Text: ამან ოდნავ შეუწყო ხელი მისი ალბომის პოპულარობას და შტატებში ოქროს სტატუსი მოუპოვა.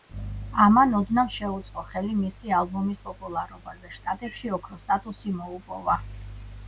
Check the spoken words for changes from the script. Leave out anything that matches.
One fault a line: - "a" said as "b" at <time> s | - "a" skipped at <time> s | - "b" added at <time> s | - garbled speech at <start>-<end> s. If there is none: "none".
none